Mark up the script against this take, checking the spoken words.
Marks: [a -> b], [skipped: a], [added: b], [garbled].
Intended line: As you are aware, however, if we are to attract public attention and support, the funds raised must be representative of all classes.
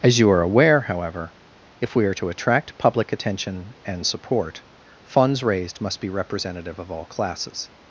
As you are aware, however, if we are to attract public attention and support, [skipped: the] funds raised must be representative of all classes.